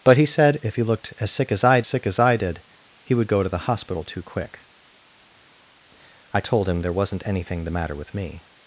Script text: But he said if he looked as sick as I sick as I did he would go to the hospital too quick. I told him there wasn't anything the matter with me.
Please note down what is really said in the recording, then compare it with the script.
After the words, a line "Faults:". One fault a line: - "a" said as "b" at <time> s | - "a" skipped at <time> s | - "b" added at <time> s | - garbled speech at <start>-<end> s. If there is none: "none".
But he said if he looked as sick as I sick as I did he would go to the hospital too quick. I told him there wasn't anything the matter with me.
Faults:
none